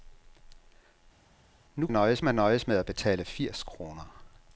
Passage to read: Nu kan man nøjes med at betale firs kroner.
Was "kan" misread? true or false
true